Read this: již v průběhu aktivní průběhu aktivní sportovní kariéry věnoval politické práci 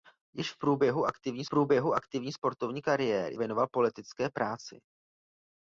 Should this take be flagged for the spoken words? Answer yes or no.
no